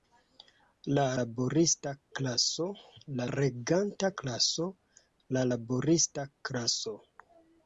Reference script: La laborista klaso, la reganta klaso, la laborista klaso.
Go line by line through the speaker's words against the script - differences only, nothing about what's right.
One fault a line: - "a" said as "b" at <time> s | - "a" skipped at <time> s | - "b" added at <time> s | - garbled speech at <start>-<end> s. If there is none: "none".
none